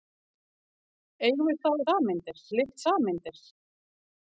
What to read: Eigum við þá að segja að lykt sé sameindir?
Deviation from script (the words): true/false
true